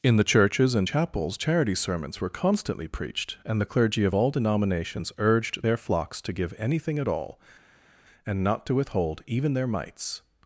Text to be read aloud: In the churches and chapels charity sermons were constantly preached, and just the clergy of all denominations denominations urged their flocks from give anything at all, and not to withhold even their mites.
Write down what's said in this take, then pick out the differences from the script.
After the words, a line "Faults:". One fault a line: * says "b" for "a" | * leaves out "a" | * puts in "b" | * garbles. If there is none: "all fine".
In the churches and chapels charity sermons were constantly preached, and the clergy of all denominations urged their flocks to give anything at all, and not to withhold even their mites.
Faults:
* leaves out "just"
* leaves out "denominations"
* says "to" for "from"